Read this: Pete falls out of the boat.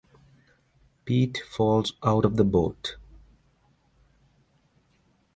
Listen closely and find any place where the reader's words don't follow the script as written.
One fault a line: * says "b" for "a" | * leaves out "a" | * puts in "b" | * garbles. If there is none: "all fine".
all fine